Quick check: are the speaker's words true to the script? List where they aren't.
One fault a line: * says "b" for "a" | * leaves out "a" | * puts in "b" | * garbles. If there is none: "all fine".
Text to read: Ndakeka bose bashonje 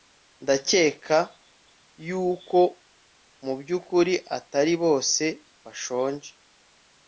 * puts in "yuko mubyukuri atari"